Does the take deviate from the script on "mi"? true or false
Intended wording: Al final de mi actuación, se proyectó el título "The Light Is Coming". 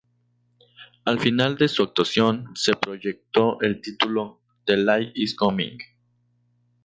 true